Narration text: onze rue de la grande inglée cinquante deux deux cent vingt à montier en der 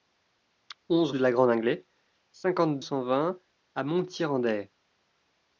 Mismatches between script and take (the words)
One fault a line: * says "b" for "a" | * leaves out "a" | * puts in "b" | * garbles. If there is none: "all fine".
* leaves out "rue"
* leaves out "deux deux"